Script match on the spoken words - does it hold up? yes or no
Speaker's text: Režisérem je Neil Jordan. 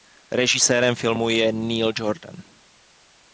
no